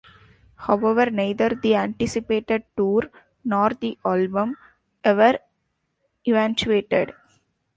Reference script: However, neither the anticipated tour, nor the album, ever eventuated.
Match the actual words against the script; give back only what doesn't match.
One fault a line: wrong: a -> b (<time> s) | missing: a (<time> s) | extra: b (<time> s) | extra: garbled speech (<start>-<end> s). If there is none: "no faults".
no faults